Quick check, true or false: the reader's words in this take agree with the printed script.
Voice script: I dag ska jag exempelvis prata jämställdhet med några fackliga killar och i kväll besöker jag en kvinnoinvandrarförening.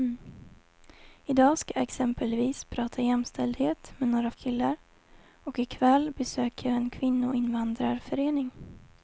false